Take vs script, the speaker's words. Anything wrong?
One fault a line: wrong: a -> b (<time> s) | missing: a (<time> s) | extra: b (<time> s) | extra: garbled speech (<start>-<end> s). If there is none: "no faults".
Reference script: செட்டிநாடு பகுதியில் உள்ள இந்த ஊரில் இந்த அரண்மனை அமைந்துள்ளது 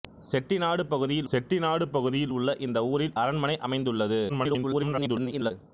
extra: செட்டிநாடு பகுதியில் (1.3 s)
missing: இந்த (3.2 s)
extra: garbled speech (4.3-5.5 s)